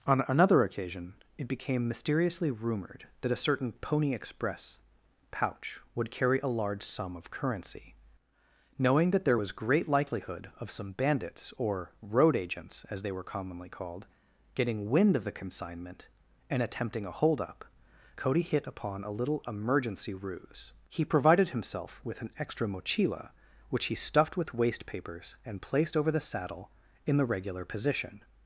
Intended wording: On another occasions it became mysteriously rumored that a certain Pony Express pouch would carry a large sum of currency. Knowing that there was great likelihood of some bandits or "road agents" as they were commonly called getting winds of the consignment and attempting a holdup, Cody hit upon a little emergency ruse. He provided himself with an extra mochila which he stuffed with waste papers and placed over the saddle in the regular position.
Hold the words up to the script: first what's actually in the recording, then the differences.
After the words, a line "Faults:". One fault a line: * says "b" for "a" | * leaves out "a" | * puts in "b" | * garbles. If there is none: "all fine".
On another occasion it became mysteriously rumored that a certain Pony Express pouch would carry a large sum of currency. Knowing that there was great likelihood of some bandits or "road agents" as they were commonly called getting wind of the consignment and attempting a holdup, Cody hit upon a little emergency ruse. He provided himself with an extra mochila which he stuffed with waste papers and placed over the saddle in the regular position.
Faults:
* says "occasion" for "occasions"
* says "wind" for "winds"